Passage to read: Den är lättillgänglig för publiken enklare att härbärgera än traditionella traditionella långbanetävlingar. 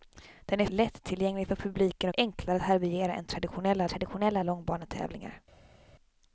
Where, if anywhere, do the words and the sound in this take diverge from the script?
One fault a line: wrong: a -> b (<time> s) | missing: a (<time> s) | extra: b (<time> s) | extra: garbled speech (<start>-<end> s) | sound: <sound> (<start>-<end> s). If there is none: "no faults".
no faults